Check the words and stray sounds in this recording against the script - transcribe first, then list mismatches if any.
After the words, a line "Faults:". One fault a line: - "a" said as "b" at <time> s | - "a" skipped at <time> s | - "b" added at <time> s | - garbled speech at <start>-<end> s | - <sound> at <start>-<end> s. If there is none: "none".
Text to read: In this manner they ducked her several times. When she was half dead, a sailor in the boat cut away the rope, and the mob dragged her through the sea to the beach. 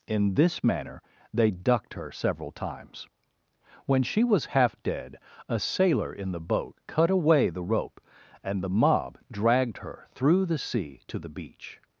In this manner they ducked her several times. When she was half dead, a sailor in the boat cut away the rope, and the mob dragged her through the sea to the beach.
Faults:
none